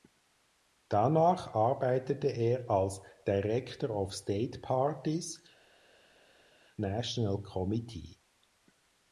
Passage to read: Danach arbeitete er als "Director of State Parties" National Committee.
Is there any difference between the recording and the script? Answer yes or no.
no